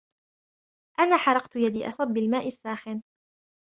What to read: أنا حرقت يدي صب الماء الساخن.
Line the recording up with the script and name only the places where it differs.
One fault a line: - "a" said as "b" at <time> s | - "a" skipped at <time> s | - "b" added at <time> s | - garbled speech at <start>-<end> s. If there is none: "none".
none